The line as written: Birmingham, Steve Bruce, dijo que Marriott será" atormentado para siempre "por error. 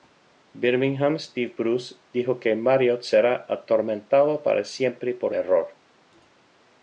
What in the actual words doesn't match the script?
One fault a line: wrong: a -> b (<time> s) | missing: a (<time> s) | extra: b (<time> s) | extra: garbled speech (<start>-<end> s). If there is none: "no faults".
no faults